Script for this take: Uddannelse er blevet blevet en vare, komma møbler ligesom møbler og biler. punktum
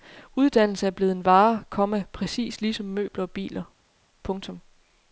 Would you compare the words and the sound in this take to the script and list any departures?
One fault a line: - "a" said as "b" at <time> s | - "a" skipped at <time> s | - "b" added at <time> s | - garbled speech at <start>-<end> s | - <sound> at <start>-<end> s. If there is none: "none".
- "blevet" skipped at 1.1 s
- "møbler" said as "præcis" at 2.1 s